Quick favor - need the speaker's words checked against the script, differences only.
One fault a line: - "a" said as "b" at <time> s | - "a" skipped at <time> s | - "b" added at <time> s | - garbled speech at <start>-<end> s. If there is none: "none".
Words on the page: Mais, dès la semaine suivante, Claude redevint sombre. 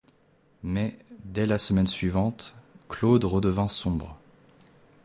none